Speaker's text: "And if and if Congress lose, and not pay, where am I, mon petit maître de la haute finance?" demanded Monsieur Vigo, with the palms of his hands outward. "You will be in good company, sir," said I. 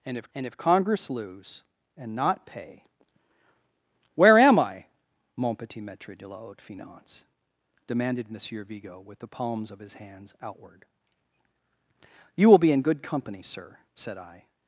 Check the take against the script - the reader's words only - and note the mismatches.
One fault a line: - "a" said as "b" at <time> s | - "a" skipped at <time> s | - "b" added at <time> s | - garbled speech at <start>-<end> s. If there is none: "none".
none